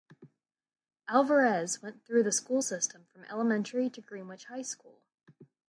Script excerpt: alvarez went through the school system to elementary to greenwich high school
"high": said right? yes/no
yes